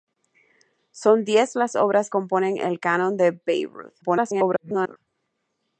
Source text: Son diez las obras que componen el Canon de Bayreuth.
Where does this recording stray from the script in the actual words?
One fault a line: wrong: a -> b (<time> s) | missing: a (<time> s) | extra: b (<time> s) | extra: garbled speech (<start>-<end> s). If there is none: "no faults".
missing: que (2.1 s)
extra: garbled speech (4.0-5.0 s)